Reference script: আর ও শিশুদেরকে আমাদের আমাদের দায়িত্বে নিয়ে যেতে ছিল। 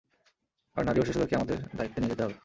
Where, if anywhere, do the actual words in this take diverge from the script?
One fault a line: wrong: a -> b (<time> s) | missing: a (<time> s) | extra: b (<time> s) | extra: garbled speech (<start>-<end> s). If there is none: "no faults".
extra: নারী (0.8 s)
missing: আমাদের (1.6 s)
wrong: ছিল -> হবে (2.2 s)